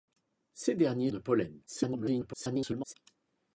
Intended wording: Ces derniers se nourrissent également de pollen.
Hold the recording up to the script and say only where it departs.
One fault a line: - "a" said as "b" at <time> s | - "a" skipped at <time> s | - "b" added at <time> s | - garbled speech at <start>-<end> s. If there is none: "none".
- "se nourrissent également" skipped at 1.1 s
- garbled speech at 1.7-2.9 s